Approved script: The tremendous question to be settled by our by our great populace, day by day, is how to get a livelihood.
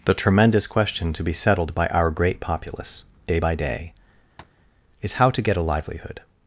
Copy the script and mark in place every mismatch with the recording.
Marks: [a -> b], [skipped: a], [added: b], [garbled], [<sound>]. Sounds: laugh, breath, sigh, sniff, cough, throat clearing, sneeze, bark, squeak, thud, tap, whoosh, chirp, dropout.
The tremendous question to be settled by our [skipped: by our] great populace, day by day, [tap] is how to get a livelihood.